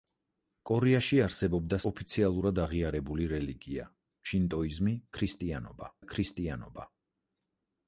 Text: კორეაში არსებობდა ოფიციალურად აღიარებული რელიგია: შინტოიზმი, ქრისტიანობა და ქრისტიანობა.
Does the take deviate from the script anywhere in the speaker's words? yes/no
no